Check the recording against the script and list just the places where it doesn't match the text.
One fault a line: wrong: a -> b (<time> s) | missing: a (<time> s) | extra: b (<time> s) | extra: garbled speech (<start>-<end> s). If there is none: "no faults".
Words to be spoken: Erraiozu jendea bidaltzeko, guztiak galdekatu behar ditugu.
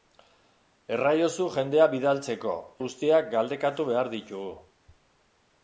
no faults